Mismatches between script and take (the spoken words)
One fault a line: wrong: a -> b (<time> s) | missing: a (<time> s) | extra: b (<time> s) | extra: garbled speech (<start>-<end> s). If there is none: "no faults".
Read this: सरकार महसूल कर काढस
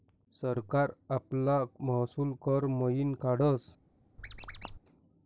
extra: आपला (1.1 s)
extra: मयीन (2.8 s)